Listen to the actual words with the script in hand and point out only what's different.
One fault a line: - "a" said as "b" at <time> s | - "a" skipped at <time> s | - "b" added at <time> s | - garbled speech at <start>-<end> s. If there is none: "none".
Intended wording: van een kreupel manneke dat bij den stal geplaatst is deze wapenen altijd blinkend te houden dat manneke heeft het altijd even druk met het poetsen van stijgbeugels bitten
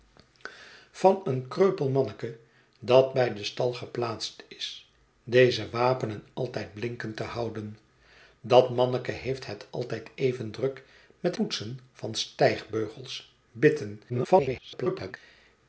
- "het" skipped at 11.4 s
- garbled speech at 14.1-15.2 s